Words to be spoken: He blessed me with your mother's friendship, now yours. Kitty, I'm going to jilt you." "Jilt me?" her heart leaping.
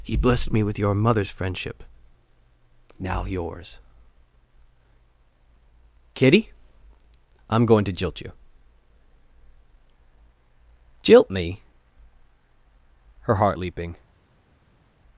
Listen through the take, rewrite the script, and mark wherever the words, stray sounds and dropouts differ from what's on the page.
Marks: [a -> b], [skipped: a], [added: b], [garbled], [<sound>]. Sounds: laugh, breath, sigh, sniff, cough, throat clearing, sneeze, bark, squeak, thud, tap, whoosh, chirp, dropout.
He blessed me with your mother's friendship, now yours. Kitty, I'm going to jilt you." "Jilt me?" her heart leaping.